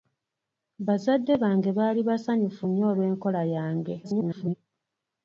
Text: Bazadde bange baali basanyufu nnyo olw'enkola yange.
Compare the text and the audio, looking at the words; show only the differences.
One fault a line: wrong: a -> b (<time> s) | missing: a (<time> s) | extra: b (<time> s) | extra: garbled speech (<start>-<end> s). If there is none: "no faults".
extra: garbled speech (4.0-4.5 s)